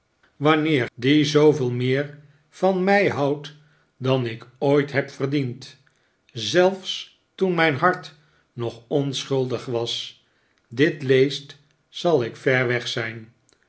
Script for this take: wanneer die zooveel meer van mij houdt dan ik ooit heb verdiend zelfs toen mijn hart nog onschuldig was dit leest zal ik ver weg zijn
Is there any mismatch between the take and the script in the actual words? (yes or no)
no